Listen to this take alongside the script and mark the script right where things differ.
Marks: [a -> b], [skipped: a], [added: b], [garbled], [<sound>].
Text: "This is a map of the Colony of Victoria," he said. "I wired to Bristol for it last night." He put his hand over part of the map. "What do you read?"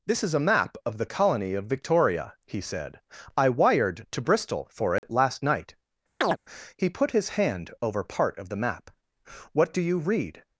"This is a map of the Colony of Victoria," he said. "I wired to Bristol for it [dropout] last night." [chirp] He put his hand over part of the map. "What do you read?"